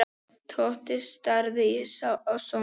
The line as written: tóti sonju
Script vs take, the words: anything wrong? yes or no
yes